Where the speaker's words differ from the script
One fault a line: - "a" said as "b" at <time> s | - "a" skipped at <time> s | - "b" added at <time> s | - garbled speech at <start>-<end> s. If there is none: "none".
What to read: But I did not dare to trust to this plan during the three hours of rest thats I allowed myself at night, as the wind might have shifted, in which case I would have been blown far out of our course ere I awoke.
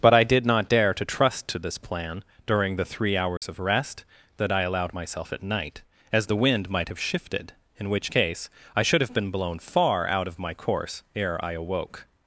- "thats" said as "that" at 4.4 s
- "would" said as "should" at 8.8 s
- "our" said as "my" at 10.4 s